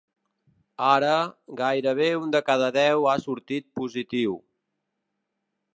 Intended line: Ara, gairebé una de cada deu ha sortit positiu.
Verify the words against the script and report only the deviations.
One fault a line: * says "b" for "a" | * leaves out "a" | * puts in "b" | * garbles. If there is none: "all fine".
* says "un" for "una"